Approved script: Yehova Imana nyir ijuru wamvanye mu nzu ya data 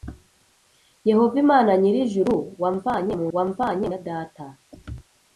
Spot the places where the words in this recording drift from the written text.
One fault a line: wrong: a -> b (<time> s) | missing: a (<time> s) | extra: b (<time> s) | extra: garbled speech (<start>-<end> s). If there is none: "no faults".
wrong: nzu -> wamvanye (3.3 s)